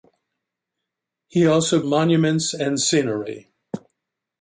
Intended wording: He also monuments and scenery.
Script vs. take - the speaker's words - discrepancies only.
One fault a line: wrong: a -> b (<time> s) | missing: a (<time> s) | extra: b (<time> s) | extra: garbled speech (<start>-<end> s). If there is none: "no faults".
no faults